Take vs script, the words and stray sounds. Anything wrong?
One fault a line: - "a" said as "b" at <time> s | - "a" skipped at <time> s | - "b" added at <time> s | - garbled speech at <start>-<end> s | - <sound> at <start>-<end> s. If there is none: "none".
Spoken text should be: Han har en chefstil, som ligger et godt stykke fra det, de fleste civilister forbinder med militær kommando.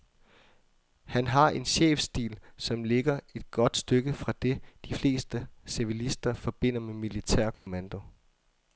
- dropout at 7.5-7.7 s